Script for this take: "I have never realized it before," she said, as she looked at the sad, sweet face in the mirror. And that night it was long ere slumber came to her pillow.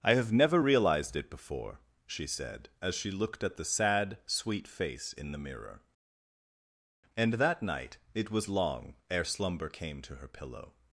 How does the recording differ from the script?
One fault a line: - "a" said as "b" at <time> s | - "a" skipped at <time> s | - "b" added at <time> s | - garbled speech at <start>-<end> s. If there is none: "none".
none